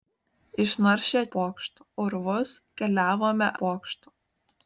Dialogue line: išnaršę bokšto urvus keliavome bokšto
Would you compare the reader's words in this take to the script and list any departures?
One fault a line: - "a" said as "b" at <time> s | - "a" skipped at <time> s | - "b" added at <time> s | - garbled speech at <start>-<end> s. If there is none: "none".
none